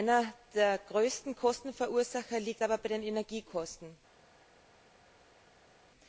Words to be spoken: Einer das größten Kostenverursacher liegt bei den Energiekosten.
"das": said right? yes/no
no